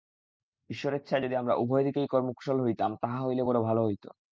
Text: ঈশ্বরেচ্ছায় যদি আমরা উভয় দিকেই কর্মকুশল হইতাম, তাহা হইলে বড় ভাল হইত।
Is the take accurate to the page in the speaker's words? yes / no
yes